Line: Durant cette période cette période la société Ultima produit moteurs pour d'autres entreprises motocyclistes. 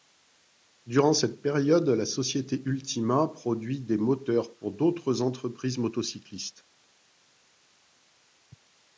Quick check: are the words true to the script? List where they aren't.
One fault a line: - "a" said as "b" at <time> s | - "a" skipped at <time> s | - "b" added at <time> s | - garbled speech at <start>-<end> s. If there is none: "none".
- "cette période" skipped at 1.9 s
- "des" added at 3.8 s